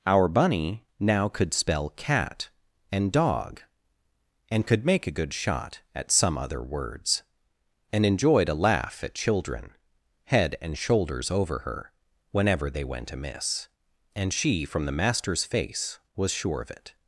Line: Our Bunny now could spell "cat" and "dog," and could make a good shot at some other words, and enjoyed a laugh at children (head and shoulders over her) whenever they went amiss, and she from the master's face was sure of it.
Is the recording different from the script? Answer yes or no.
no